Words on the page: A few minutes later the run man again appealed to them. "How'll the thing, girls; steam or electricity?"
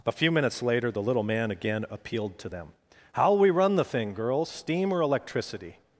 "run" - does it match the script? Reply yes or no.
no